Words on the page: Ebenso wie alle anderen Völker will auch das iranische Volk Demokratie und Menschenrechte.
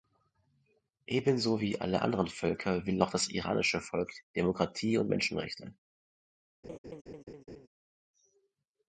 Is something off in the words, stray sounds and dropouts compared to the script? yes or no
yes